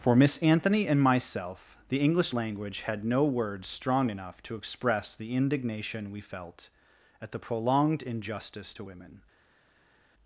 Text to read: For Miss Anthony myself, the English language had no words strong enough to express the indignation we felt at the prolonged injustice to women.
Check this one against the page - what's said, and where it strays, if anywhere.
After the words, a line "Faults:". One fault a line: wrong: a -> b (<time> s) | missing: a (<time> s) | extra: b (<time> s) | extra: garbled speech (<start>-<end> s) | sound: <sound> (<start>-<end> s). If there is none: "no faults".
For Miss Anthony and myself, the English language had no words strong enough to express the indignation we felt at the prolonged injustice to women.
Faults:
extra: and (0.9 s)